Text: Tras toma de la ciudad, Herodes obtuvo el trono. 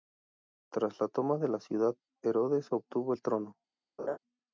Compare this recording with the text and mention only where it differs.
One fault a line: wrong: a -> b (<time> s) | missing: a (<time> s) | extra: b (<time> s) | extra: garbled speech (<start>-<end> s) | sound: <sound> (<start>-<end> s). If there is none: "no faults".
extra: la (1.0 s)
sound: laugh (4.0-4.2 s)